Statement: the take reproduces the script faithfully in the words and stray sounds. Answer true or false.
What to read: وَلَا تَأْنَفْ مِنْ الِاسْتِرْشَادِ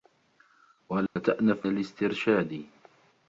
false